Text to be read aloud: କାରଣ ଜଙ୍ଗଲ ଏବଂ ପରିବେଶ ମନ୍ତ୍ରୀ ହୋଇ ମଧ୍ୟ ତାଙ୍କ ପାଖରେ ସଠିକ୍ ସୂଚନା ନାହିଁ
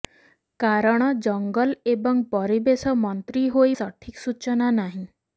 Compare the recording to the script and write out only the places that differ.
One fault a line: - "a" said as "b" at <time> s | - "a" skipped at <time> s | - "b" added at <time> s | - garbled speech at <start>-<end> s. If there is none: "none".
- "ମଧ୍ୟ ତାଙ୍କ ପାଖରେ" skipped at 3.7 s